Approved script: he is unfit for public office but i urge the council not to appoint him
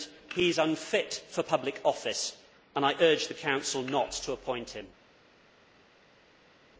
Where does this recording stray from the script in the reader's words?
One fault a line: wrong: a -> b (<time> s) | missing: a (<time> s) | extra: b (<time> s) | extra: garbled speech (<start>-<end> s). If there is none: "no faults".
wrong: but -> and (2.8 s)